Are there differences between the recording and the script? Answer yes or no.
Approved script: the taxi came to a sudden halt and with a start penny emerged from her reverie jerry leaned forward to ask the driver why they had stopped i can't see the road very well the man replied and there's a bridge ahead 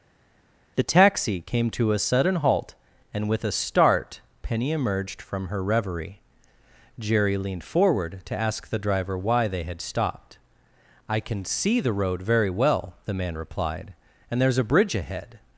yes